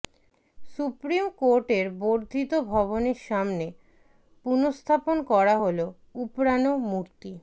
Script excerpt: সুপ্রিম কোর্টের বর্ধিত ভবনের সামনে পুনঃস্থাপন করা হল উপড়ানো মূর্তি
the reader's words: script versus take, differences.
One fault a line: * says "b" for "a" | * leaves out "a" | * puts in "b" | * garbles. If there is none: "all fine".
all fine